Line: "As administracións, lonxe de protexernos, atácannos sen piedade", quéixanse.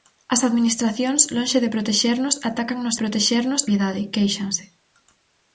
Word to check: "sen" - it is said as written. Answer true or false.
false